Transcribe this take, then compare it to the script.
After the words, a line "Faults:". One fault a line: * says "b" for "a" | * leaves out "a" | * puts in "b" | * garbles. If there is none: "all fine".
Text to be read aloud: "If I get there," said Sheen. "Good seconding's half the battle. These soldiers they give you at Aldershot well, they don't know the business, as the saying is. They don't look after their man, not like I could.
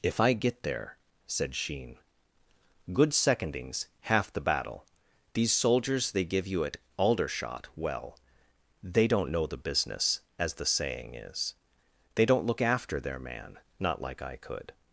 "If I get there," said Sheen. "Good seconding's half the battle. These soldiers they give you at Aldershot well, they don't know the business, as the saying is. They don't look after their man, not like I could.
Faults:
all fine